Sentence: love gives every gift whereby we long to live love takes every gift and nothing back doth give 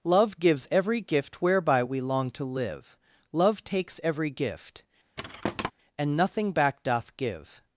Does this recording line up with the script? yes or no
yes